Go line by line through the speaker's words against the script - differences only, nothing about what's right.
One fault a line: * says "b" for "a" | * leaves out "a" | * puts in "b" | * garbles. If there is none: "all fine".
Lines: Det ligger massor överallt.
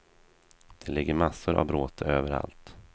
* puts in "av bråte"